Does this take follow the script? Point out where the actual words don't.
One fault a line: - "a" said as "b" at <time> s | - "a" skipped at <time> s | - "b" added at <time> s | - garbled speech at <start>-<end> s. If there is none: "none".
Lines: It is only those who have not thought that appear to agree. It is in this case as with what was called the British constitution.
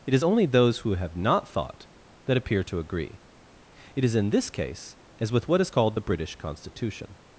- "was" said as "is" at 5.6 s